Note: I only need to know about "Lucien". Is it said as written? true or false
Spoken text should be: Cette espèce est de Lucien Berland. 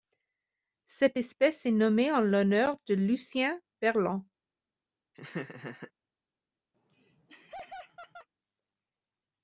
true